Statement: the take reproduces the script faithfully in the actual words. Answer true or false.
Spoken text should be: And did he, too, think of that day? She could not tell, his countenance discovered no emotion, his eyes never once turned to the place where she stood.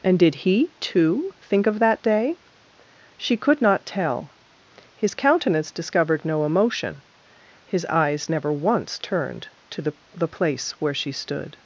false